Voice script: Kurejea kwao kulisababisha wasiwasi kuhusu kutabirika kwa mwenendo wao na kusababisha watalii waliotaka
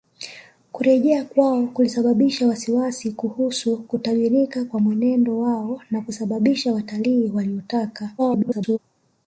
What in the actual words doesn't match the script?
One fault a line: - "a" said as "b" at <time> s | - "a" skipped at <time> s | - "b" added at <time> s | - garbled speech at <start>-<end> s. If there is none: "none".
- garbled speech at 8.2-8.8 s